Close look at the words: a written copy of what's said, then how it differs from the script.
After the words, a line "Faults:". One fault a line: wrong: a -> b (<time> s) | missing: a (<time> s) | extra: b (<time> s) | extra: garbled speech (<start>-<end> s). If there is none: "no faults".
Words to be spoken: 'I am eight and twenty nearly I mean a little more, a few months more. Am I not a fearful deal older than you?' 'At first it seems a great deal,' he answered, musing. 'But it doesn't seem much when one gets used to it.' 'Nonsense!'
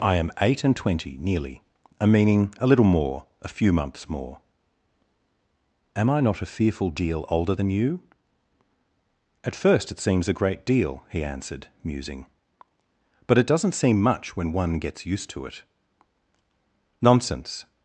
'I am eight and twenty nearly a meaning a little more, a few months more. Am I not a fearful deal older than you?' 'At first it seems a great deal,' he answered, musing. 'But it doesn't seem much when one gets used to it.' 'Nonsense!'
Faults:
wrong: I mean -> a meaning (2.0 s)